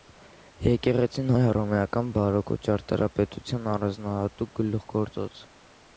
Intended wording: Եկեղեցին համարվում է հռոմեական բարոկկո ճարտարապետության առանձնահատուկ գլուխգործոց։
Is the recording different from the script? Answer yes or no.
yes